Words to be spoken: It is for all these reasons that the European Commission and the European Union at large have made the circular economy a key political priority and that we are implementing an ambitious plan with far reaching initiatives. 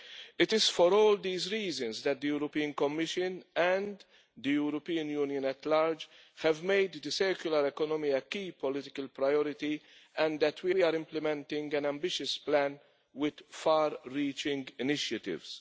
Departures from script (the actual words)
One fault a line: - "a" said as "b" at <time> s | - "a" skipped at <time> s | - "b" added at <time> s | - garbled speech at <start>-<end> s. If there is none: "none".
- "we" added at 10.7 s